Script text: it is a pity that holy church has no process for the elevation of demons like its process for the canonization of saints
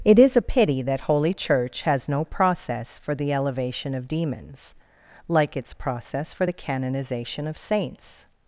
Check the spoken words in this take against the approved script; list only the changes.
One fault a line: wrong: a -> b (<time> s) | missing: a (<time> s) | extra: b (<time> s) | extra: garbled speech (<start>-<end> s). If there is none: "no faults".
no faults